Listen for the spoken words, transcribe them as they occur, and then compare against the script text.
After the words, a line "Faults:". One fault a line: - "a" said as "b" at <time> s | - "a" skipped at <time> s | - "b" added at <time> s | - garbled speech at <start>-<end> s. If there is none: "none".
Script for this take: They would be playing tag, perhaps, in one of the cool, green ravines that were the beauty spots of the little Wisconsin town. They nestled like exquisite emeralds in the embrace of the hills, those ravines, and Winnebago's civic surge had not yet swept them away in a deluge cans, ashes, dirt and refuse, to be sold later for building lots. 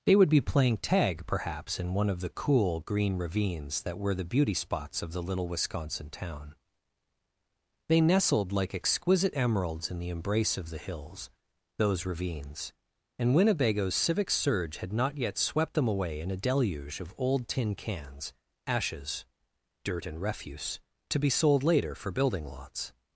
They would be playing tag, perhaps, in one of the cool, green ravines that were the beauty spots of the little Wisconsin town. They nestled like exquisite emeralds in the embrace of the hills, those ravines, and Winnebago's civic surge had not yet swept them away in a deluge of old tin cans, ashes, dirt and refuse, to be sold later for building lots.
Faults:
- "of old tin" added at 17.0 s